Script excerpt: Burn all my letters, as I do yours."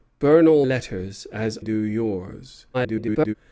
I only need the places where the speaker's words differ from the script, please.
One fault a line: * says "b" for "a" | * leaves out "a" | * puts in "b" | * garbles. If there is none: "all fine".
* leaves out "my"
* leaves out "I"
* garbles